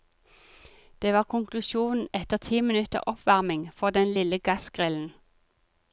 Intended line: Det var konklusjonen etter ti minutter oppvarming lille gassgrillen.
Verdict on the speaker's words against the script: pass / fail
fail